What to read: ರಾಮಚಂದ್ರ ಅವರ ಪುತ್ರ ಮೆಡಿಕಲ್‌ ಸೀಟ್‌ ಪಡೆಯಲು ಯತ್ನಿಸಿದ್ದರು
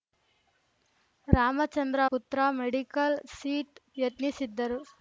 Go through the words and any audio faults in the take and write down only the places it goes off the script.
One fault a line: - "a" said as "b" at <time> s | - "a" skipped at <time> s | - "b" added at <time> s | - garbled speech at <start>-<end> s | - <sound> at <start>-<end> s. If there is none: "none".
- "ಅವರ" skipped at 2.0 s
- "ಪಡೆಯಲು" skipped at 3.8 s